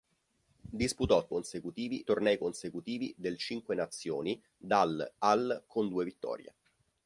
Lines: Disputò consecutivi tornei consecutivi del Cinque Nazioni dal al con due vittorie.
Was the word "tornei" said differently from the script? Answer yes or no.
no